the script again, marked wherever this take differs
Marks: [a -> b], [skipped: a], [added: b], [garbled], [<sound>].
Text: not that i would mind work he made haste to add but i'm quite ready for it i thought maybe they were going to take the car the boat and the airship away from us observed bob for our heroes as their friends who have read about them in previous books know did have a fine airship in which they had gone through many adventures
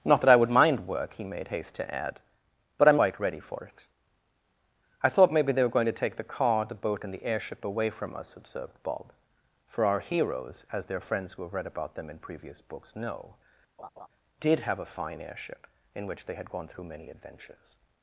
not that i would mind work he made haste to add but i'm quite ready for it i thought maybe they were going to take the car the boat and the airship away from us observed bob for our heroes as their friends who have read about them in previous books know [laugh] did have a fine airship in which they had gone through many adventures